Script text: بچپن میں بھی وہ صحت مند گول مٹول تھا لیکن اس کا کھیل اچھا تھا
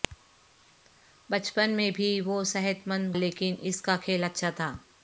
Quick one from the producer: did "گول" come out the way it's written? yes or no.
no